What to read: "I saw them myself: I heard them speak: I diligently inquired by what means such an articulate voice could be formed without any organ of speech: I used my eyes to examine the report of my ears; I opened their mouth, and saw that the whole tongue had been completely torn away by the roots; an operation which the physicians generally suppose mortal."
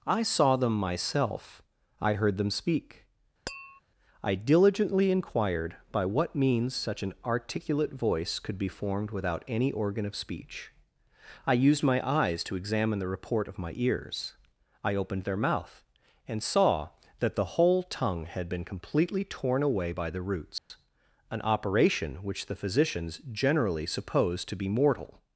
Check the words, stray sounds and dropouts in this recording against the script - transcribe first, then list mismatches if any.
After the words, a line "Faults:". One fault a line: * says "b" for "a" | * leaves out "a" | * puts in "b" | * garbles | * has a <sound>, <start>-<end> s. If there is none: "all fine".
"I saw them myself: I heard them speak: I diligently inquired by what means such an articulate voice could be formed without any organ of speech: I used my eyes to examine the report of my ears; I opened their mouth, and saw that the whole tongue had been completely torn away by the roots; an operation which the physicians generally suppose to be mortal."
Faults:
* has a tap, 3.5-3.8 s
* has a dropout, 20.6-20.7 s
* puts in "to be"